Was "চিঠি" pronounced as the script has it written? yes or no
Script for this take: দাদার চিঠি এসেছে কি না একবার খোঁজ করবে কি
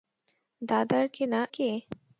no